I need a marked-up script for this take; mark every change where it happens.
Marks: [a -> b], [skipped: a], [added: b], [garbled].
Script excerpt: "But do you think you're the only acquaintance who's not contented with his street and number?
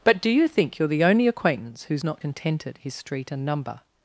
"But do you think you're the only acquaintance who's not contented [skipped: with] his street and number?